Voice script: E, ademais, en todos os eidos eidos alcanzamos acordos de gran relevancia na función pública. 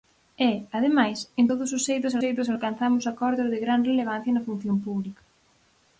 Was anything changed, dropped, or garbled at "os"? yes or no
no